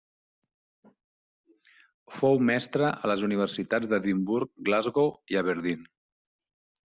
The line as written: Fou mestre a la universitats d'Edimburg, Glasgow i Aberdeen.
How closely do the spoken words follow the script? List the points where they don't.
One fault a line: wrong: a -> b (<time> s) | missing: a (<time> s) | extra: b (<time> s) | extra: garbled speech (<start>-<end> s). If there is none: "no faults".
wrong: la -> les (3.1 s)